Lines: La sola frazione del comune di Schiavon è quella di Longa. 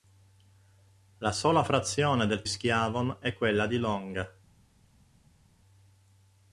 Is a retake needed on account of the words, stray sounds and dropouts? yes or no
yes